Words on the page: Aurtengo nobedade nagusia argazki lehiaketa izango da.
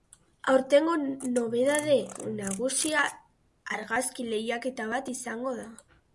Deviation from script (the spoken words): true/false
true